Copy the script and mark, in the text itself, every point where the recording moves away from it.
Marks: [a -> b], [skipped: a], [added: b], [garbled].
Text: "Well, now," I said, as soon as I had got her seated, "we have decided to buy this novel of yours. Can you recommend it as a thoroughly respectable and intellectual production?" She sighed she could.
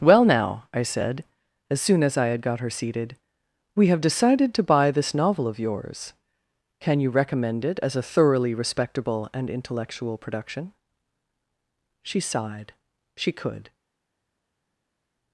"Well, now," I said, as soon as I had got her seated, "we have decided to buy this novel of yours. Can you recommend it as a thoroughly respectable and intellectual production?" She sighed she could.